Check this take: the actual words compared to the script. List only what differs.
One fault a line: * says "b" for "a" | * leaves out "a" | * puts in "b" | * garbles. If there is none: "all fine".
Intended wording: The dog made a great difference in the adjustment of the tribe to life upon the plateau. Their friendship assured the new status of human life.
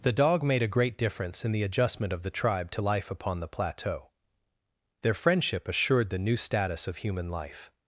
all fine